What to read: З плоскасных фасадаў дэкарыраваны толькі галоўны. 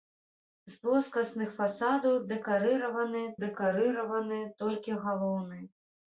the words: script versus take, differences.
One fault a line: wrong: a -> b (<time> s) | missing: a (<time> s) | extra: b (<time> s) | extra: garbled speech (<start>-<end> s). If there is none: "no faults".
extra: дэкарыраваны (3.4 s)